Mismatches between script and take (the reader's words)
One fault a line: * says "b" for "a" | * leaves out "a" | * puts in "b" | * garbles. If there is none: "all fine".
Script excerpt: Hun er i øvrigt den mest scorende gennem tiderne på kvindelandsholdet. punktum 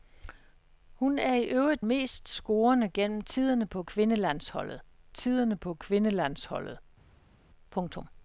* leaves out "den"
* puts in "tiderne på kvindelandsholdet"